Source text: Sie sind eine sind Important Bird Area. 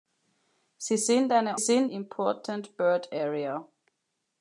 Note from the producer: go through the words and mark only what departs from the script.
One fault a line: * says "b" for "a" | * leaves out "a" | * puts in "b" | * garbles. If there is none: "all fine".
all fine